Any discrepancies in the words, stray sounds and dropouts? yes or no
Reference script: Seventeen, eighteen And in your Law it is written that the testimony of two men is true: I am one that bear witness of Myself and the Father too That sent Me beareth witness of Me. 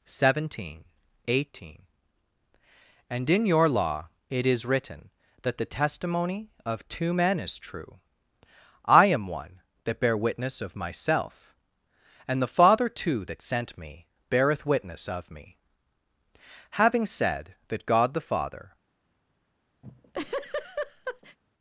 yes